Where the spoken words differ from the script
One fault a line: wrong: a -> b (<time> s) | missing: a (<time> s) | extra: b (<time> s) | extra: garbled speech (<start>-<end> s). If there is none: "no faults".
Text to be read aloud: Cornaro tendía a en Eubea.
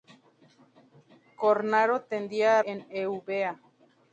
no faults